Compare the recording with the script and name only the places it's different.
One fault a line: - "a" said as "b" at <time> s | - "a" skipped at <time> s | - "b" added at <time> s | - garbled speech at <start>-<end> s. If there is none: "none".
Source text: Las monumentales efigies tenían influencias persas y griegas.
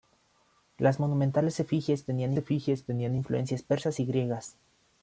- "efigies tenían" added at 2.4 s